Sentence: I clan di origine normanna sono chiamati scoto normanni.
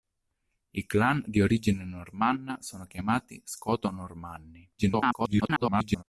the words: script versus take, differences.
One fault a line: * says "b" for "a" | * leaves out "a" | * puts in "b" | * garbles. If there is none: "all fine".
* garbles